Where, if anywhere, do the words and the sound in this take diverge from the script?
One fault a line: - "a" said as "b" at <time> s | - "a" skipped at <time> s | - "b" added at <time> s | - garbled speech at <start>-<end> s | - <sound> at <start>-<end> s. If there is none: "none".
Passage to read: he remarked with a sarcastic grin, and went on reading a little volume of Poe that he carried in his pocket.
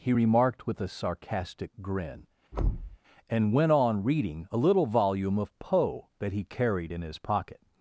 - thud at 2.5-3.0 s